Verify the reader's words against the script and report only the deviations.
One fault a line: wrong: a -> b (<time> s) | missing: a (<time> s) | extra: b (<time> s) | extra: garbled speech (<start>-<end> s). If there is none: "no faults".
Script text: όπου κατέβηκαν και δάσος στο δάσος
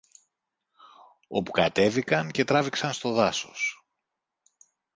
wrong: δάσος -> τράβηξαν (2.4 s)